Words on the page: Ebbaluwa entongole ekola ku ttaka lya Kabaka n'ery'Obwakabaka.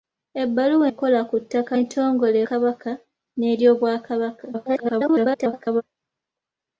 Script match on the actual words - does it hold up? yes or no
no